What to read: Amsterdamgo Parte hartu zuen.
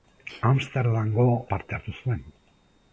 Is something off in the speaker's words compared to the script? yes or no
no